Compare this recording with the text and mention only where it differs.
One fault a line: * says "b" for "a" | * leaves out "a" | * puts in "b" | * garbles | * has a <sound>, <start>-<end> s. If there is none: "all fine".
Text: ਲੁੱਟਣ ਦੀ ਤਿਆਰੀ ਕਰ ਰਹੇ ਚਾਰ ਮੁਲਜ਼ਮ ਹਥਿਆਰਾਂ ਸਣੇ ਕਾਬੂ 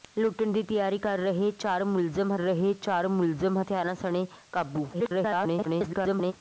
* puts in "ਰਹੇ ਚਾਰ ਮੁਲਜ਼ਮ"
* garbles